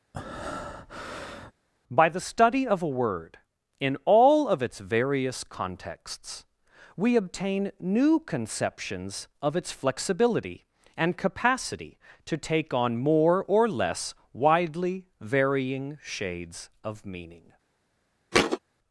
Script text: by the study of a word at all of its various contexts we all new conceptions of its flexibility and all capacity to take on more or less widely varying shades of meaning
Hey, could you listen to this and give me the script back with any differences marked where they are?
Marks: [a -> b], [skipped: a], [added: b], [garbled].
by the study of a word [at -> in] all of its various contexts we [all -> obtain] new conceptions of its flexibility and [skipped: all] capacity to take on more or less widely varying shades of meaning